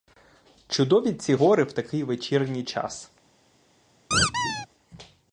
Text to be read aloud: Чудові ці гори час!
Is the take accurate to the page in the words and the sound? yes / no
no